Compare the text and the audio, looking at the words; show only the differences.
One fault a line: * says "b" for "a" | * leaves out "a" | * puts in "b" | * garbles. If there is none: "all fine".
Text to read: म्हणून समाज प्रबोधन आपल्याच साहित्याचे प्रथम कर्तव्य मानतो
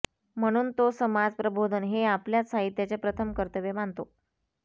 * puts in "तो"
* puts in "हे"